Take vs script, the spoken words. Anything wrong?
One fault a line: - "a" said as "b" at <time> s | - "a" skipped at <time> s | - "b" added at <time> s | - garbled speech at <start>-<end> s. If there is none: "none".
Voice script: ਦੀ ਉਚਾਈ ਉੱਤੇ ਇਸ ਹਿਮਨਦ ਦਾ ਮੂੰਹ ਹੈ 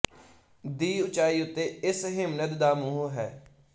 none